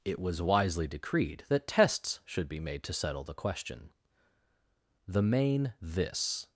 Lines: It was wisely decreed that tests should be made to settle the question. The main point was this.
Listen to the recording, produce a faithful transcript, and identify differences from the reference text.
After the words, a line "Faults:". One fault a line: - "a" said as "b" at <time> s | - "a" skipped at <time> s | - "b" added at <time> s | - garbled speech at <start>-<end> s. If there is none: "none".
It was wisely decreed that tests should be made to settle the question. The main this.
Faults:
- "point was" skipped at 5.7 s